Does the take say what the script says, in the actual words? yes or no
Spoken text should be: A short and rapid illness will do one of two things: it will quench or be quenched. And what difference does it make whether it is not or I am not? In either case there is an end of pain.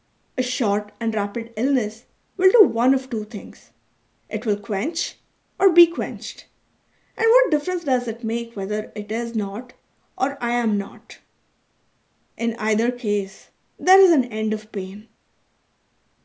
yes